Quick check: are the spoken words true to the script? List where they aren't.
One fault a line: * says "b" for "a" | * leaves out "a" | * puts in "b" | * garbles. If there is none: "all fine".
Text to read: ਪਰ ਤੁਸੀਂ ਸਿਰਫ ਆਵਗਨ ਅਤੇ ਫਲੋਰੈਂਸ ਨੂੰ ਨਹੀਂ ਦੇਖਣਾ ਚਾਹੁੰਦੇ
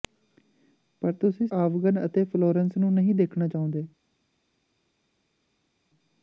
* leaves out "ਸਿਰਫ"